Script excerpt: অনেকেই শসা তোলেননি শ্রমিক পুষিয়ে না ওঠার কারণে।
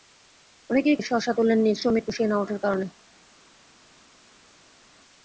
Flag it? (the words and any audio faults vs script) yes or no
no